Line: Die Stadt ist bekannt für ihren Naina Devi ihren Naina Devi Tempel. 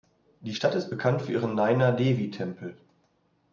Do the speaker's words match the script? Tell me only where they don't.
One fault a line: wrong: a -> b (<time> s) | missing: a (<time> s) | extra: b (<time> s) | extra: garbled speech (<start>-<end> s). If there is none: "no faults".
missing: ihren Naina Devi (2.3 s)